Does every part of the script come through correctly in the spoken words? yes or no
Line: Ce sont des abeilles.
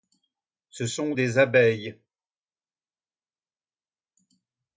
yes